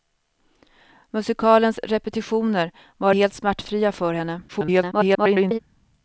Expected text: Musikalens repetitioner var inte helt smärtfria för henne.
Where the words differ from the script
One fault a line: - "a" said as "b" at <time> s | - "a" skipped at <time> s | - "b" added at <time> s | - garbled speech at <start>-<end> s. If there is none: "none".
- "inte" skipped at 3.1 s
- garbled speech at 4.5-5.6 s